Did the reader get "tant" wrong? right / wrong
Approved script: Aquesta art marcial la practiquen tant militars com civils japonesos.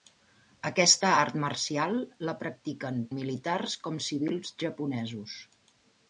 wrong